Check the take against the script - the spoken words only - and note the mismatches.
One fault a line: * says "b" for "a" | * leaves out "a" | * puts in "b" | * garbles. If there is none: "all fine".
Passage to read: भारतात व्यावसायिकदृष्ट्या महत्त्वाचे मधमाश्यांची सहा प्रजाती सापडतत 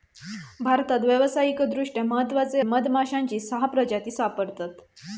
all fine